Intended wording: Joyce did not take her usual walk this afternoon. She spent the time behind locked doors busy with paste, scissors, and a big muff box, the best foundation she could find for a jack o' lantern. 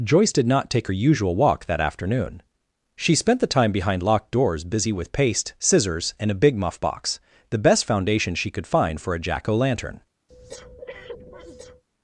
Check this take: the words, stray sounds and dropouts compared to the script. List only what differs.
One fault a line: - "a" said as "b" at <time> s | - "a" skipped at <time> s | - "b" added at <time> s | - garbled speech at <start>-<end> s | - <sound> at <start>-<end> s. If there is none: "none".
- "this" said as "that" at 1.6 s
- breath at 10.3-11.8 s